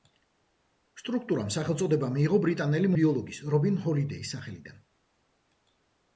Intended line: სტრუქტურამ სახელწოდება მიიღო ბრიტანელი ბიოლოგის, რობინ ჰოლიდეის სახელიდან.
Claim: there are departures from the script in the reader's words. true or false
false